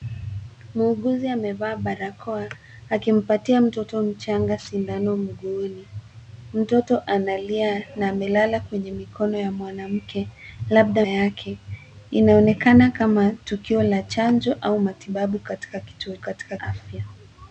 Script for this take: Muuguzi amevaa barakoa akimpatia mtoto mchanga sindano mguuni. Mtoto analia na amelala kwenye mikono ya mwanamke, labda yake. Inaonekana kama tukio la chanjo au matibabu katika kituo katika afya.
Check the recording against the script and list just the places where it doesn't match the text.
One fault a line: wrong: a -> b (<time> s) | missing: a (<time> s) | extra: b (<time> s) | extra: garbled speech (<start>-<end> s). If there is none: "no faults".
no faults